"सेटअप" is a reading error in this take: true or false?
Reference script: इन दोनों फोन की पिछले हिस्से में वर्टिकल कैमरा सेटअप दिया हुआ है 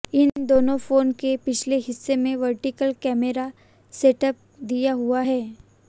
false